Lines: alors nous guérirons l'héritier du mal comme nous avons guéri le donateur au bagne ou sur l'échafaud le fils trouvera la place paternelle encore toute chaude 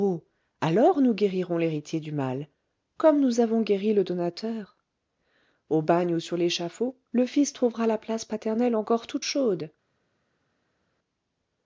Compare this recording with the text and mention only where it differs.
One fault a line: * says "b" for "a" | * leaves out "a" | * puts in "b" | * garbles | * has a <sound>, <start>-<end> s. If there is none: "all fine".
all fine